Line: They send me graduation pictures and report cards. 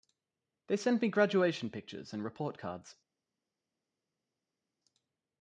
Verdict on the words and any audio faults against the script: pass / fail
pass